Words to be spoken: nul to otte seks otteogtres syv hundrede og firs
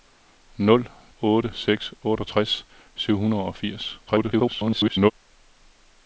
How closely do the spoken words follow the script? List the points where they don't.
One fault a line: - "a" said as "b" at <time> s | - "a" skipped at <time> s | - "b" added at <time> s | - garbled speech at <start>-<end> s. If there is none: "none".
- "to" skipped at 0.9 s
- garbled speech at 4.1-5.1 s